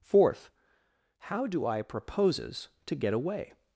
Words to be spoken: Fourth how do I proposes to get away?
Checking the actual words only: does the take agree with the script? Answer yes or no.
yes